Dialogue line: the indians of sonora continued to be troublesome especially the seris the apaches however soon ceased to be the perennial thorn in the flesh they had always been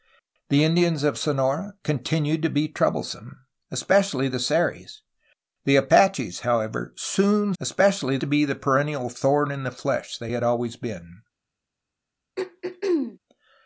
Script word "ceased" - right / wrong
wrong